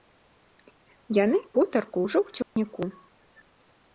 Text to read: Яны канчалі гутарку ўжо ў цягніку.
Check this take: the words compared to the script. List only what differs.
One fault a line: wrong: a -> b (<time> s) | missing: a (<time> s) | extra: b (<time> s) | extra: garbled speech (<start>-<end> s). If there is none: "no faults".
missing: канчалі (1.4 s)